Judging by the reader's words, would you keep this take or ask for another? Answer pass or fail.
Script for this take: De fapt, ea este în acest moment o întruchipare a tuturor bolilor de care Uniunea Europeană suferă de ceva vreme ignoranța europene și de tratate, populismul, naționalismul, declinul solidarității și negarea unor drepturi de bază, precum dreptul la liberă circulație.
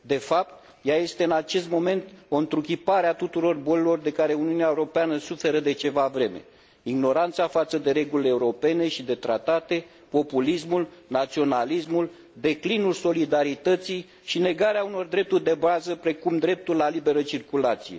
fail